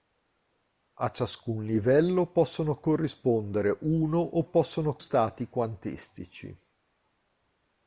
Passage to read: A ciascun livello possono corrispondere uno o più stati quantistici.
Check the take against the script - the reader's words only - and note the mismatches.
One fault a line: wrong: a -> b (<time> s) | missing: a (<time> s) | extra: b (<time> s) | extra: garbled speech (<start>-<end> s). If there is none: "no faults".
wrong: più -> possono (4.4 s)